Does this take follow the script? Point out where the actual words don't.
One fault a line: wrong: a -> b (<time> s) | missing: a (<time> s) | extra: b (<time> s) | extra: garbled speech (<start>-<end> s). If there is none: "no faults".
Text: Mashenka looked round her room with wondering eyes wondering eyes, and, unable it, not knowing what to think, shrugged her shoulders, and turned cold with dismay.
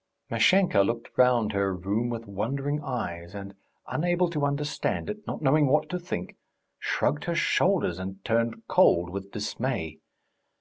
wrong: wondering eyes and unable -> and unable to understand (3.4 s)